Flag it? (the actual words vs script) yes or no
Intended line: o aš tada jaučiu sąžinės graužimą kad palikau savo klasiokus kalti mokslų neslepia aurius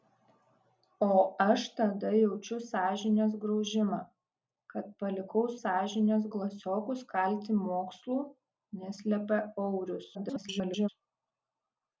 yes